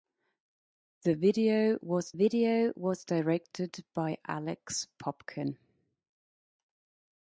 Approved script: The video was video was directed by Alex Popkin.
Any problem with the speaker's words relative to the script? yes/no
no